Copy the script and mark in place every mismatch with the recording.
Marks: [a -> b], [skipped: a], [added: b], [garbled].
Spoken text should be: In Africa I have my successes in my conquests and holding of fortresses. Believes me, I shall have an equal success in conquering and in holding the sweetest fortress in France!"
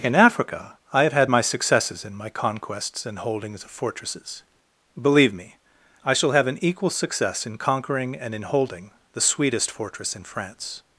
In Africa I have [added: had] my successes in my conquests and [holding -> holdings] of fortresses. [Believes -> Believe] me, I shall have an equal success in conquering and in holding the sweetest fortress in France!"